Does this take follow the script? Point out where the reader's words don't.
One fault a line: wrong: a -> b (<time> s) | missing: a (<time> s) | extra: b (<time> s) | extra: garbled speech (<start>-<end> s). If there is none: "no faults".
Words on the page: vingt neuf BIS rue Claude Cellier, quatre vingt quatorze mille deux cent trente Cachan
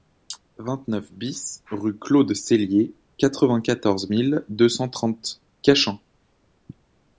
no faults